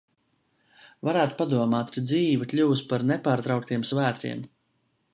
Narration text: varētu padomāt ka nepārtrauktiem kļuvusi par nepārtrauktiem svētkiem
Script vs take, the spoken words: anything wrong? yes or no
yes